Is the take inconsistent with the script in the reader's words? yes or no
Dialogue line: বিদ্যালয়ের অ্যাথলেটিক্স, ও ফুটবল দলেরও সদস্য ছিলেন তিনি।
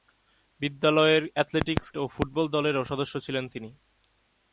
no